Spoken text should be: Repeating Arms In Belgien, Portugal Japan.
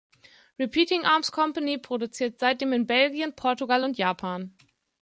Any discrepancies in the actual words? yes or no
yes